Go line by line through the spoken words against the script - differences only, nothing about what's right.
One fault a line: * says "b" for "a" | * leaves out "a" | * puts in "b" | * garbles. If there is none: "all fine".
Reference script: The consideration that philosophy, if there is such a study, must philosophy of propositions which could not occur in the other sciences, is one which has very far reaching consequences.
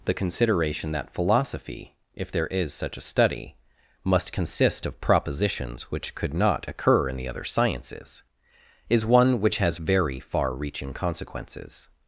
* says "consist" for "philosophy"